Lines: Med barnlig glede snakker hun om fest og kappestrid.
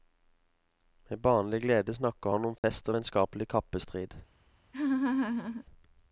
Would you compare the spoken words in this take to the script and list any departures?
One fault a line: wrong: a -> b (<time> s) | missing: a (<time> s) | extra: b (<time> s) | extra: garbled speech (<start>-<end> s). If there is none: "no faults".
wrong: hun -> han (2.3 s)
extra: vennskapelig (2.9 s)